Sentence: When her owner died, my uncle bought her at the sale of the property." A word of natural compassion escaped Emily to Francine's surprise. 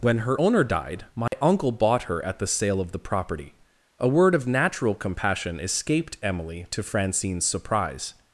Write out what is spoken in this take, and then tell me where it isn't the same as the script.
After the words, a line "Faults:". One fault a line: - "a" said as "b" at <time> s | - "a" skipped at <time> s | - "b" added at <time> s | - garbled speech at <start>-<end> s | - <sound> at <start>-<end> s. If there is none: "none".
When her owner died, my uncle bought her at the sale of the property." A word of natural compassion escaped Emily to Francine's surprise.
Faults:
- dropout at 1.3-1.3 s